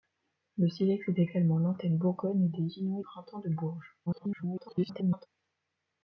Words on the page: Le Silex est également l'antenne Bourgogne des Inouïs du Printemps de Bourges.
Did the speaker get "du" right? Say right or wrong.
wrong